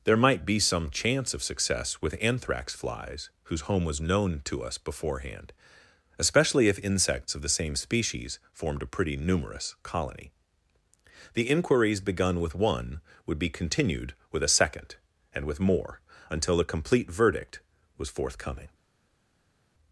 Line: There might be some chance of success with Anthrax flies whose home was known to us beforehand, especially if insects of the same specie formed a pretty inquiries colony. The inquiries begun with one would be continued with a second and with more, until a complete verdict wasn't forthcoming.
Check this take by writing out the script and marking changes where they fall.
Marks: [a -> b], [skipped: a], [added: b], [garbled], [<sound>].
There might be some chance of success with Anthrax flies whose home was known to us beforehand, especially if insects of the same [specie -> species] formed a pretty [inquiries -> numerous] colony. The inquiries begun with one would be continued with a second and with more, until a complete verdict [wasn't -> was] forthcoming.